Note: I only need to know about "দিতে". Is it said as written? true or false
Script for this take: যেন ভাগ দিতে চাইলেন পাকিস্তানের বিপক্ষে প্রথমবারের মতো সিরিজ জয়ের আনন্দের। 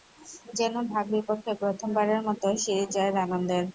false